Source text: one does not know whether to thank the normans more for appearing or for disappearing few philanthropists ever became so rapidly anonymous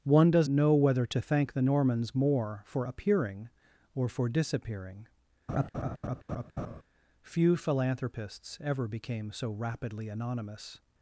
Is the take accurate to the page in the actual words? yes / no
no